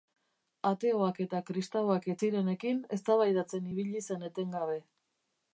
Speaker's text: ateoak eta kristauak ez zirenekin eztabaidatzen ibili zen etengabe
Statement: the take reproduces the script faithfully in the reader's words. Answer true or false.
true